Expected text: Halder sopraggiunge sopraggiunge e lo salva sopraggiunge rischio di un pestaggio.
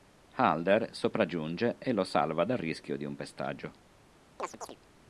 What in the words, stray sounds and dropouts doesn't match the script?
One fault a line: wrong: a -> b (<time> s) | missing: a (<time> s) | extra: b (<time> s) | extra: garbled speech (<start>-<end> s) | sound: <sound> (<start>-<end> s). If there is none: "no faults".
missing: sopraggiunge (1.8 s)
wrong: sopraggiunge -> dal (2.4 s)
sound: chirp (4.4-4.8 s)